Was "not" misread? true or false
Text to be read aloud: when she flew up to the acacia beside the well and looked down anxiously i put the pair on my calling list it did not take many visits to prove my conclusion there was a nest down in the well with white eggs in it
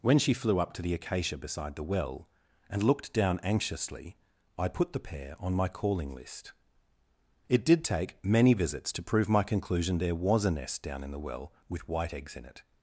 true